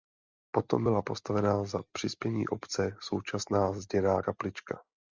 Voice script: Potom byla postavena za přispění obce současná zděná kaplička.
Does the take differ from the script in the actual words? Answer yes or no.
no